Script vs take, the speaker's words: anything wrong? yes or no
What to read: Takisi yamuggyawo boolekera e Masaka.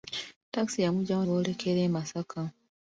no